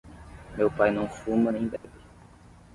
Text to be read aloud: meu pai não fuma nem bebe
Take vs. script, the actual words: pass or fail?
pass